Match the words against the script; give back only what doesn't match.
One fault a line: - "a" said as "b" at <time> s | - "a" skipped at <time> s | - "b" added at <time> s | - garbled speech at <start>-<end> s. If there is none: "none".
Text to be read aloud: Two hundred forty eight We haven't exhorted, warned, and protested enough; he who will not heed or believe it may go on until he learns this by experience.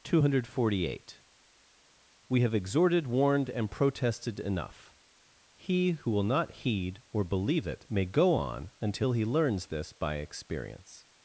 - "haven't" said as "have" at 2.4 s